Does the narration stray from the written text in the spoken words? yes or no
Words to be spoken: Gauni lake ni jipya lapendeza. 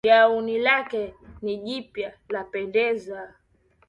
no